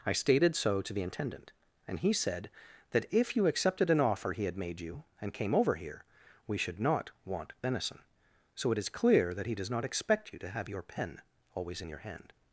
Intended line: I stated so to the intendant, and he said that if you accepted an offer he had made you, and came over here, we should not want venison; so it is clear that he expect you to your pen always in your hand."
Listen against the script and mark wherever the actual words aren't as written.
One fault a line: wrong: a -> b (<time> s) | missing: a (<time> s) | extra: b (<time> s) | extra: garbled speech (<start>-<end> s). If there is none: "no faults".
extra: does not (9.6 s)
extra: have (10.5 s)